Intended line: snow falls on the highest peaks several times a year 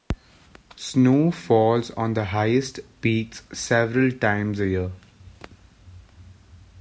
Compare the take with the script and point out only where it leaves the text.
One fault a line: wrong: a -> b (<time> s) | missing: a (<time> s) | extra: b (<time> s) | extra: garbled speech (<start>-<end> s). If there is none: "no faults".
no faults